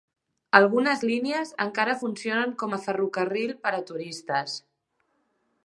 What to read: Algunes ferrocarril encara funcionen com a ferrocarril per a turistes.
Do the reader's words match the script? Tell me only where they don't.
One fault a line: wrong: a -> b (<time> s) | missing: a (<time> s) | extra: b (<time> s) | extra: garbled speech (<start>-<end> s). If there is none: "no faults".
wrong: ferrocarril -> línies (1.1 s)